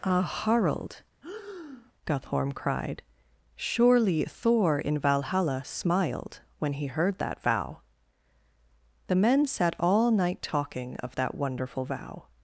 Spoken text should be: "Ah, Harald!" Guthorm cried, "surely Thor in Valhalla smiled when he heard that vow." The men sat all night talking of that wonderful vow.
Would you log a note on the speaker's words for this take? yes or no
no